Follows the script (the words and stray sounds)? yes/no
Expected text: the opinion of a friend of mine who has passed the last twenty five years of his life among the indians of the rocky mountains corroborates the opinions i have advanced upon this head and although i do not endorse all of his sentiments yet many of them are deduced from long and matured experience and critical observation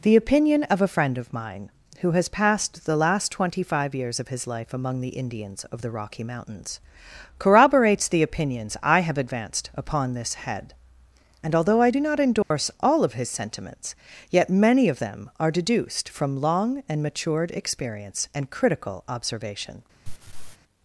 no